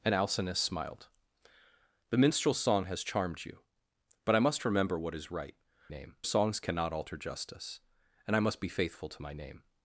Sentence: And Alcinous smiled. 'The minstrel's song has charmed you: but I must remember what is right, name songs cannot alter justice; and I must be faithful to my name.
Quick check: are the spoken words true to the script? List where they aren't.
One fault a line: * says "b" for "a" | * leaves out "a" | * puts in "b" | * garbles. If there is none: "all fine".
all fine